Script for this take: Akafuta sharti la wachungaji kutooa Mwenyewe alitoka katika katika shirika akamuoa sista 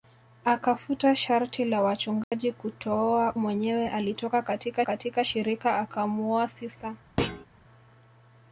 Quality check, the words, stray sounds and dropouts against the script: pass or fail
fail